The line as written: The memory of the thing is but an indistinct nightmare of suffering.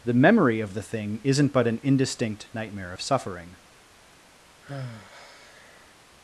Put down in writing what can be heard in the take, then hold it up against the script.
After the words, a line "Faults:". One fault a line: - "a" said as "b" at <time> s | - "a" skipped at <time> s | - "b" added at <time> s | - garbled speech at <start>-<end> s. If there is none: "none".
The memory of the thing isn't but an indistinct nightmare of suffering.
Faults:
- "is" said as "isn't" at 1.2 s